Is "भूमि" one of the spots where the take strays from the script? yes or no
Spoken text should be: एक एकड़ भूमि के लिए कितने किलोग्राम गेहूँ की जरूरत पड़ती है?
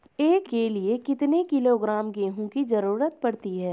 yes